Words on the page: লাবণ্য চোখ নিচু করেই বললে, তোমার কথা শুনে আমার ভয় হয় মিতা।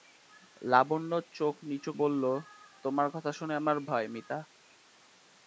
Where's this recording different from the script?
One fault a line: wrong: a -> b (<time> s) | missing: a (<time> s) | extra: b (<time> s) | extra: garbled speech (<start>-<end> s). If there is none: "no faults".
missing: করেই (1.9 s)
missing: ভয় (3.8 s)